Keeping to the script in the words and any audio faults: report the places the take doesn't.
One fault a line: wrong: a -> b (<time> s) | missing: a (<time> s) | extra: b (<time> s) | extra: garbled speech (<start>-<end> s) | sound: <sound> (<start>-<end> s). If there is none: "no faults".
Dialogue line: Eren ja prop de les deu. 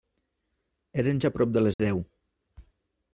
sound: dropout (1.7-1.8 s)